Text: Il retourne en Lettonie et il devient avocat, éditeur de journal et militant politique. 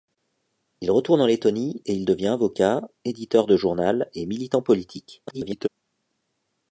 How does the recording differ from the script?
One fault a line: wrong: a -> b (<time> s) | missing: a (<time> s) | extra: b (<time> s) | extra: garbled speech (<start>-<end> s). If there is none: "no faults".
extra: garbled speech (5.3-5.7 s)